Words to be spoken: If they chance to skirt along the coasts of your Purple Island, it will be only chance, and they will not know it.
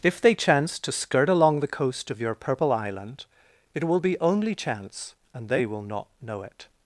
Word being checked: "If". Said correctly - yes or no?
yes